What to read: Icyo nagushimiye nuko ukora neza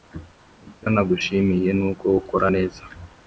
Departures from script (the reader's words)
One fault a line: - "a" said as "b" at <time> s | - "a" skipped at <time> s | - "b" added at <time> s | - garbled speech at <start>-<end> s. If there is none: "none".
none